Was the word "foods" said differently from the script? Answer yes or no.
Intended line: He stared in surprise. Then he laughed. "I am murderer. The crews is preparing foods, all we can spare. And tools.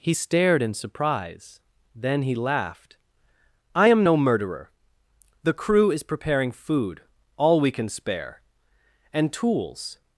yes